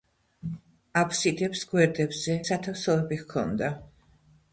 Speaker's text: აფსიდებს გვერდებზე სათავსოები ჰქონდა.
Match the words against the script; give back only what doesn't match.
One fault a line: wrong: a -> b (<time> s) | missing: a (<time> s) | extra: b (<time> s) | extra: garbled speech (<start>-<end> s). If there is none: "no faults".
no faults